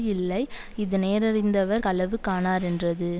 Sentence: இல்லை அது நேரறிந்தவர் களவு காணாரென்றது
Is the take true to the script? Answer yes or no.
no